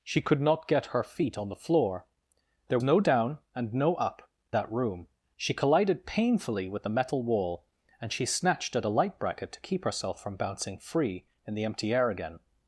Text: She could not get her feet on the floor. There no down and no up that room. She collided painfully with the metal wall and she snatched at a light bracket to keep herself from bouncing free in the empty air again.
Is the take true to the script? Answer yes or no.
yes